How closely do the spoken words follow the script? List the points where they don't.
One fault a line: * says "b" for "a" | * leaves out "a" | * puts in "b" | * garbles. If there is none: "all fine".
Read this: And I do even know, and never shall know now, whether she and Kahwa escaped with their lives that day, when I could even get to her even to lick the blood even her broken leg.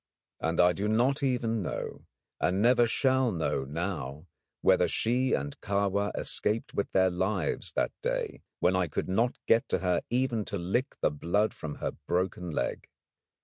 * puts in "not"
* says "not" for "even"
* says "from" for "even"